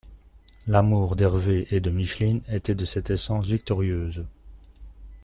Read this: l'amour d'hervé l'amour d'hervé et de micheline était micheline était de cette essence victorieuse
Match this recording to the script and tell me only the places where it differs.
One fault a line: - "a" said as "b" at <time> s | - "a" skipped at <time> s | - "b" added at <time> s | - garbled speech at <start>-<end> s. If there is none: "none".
- "l'amour d'hervé" skipped at 1.7 s
- "micheline était" skipped at 2.7 s